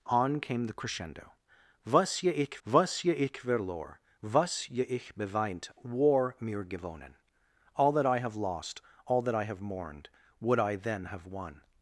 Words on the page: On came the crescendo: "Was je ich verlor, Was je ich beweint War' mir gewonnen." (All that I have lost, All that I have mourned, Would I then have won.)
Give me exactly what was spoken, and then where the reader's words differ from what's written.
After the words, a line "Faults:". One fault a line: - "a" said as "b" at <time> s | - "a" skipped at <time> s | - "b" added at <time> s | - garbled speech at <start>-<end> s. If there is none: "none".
On came the crescendo: "Was je ich was je ich verlor, Was je ich beweint War' mir gewonnen." (All that I have lost, All that I have mourned, Would I then have won.)
Faults:
- "was je ich" added at 2.7 s